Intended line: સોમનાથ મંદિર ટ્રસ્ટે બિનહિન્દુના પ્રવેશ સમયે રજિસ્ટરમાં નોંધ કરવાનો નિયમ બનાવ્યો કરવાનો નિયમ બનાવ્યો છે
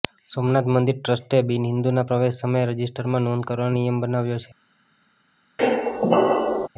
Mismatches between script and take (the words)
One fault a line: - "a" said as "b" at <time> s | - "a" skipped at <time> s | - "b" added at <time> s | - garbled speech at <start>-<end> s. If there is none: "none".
- "કરવાનો નિયમ બનાવ્યો" skipped at 4.4 s